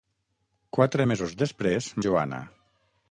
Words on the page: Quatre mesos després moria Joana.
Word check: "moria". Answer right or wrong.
wrong